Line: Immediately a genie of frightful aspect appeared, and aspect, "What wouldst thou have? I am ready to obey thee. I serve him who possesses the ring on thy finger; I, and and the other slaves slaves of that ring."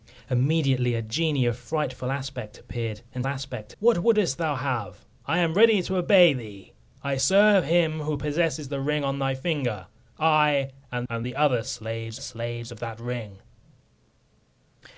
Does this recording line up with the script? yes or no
yes